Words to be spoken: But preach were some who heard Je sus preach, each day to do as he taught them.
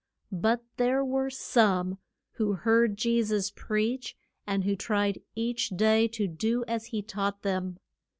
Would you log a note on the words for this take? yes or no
yes